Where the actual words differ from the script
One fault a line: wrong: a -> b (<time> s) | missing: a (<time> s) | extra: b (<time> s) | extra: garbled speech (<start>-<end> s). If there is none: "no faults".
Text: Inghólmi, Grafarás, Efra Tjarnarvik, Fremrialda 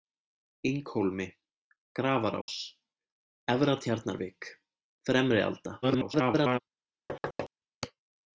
extra: garbled speech (5.8-6.6 s)